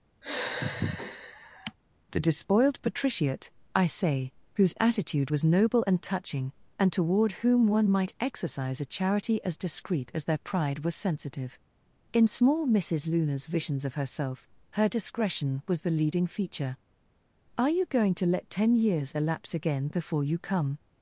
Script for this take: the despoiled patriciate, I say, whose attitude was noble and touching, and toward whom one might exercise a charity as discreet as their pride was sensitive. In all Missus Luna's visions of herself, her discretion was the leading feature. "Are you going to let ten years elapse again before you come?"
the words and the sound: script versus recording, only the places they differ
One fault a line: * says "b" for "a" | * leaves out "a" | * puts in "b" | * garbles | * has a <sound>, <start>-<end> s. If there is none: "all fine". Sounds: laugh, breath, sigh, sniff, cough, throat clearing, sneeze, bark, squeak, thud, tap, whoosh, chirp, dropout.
* has a sigh, 0.2-1.8 s
* says "small" for "all"